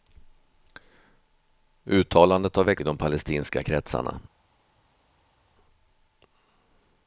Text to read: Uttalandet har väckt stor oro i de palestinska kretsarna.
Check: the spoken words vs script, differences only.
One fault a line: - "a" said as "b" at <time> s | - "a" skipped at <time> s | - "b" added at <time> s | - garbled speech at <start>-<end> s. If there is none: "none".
- "stor oro i" skipped at 2.8 s